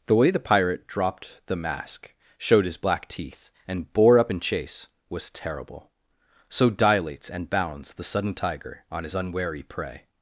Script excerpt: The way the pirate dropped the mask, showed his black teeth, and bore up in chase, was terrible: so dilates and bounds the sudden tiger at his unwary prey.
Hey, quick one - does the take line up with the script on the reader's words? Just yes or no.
no